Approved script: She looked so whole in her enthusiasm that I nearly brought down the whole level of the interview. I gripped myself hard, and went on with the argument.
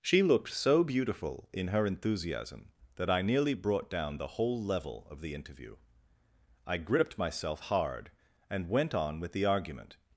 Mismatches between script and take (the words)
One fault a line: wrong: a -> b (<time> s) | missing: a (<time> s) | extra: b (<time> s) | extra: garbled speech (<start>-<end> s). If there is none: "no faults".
wrong: whole -> beautiful (0.8 s)